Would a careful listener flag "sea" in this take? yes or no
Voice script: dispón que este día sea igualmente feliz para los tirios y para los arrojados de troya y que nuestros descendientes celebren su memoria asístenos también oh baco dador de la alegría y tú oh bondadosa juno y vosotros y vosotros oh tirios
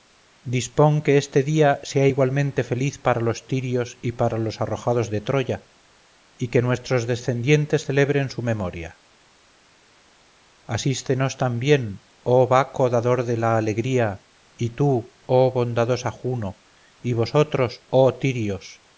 no